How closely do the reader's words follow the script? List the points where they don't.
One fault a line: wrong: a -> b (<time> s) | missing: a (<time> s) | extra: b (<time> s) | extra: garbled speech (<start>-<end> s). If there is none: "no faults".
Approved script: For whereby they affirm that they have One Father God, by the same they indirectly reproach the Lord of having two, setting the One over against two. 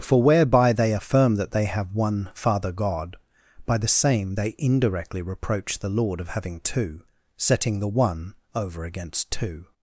no faults